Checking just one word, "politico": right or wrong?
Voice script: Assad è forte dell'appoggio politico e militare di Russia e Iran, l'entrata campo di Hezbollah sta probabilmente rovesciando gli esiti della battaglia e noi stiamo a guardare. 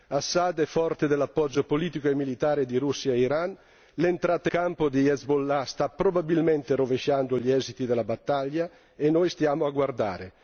right